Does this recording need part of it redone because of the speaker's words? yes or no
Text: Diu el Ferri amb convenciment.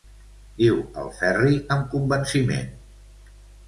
no